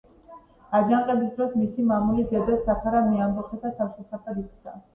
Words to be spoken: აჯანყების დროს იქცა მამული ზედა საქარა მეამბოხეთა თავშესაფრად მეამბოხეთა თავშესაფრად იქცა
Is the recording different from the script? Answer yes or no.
yes